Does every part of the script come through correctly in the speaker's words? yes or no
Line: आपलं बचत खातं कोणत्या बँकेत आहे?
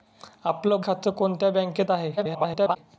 no